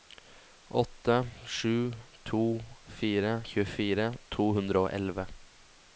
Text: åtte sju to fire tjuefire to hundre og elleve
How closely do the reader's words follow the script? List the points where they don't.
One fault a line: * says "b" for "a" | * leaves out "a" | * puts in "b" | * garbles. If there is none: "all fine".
all fine